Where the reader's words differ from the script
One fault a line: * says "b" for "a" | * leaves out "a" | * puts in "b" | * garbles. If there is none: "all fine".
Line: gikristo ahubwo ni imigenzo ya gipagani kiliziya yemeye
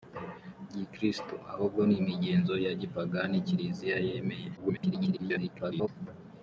* garbles